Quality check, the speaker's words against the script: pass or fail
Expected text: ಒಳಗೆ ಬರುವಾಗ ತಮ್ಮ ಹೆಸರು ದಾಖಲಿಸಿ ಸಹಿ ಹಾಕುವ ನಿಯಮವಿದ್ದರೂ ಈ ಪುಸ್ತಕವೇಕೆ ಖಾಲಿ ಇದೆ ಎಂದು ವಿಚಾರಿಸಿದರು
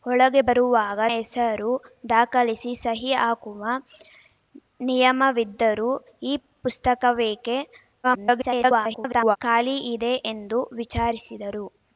fail